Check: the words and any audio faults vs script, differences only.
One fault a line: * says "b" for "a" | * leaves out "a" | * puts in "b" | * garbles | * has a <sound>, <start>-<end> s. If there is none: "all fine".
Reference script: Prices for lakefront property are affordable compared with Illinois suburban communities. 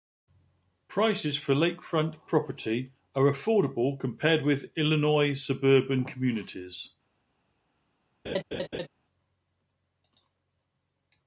* has a laugh, 8.3-8.9 s